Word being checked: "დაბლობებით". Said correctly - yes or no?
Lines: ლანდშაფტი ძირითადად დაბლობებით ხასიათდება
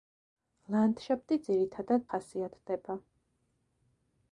no